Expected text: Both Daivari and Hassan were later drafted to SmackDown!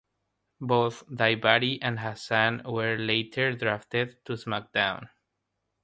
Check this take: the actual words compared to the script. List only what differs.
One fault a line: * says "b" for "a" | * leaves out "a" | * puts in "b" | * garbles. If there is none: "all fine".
all fine